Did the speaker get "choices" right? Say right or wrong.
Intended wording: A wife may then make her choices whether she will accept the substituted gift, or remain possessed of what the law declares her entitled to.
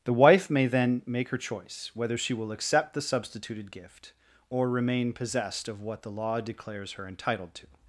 wrong